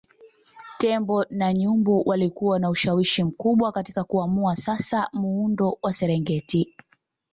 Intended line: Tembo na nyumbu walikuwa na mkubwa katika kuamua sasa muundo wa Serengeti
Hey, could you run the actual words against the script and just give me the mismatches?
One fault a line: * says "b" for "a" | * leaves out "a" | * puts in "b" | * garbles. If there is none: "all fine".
* puts in "ushawishi"